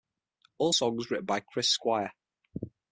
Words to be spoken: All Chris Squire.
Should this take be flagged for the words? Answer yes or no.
yes